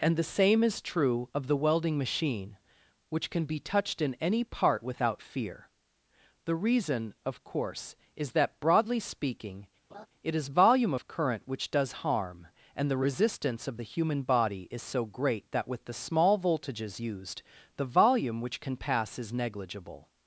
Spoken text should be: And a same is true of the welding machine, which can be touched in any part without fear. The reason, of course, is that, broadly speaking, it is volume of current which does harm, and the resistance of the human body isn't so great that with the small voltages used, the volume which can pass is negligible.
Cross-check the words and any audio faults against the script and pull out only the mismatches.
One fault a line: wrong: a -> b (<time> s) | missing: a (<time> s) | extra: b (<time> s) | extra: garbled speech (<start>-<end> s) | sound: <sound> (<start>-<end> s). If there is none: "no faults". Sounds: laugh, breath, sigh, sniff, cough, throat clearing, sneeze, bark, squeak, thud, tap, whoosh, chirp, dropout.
wrong: a -> the (0.2 s)
sound: laugh (9.9-10.1 s)
wrong: isn't -> is (14.7 s)